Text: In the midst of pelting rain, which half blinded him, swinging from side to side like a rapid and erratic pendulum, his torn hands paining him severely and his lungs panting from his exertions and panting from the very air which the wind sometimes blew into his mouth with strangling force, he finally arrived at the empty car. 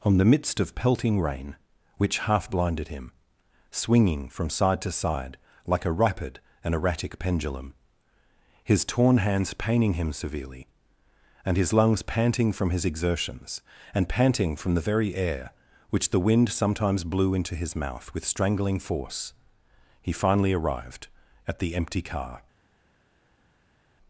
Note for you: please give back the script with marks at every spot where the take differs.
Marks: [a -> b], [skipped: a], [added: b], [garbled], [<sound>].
[In -> On] the midst of pelting rain, which half blinded him, swinging from side to side like a rapid and erratic pendulum, his torn hands paining him severely and his lungs panting from his exertions and panting from the very air which the wind sometimes blew into his mouth with strangling force, he finally arrived at the empty car.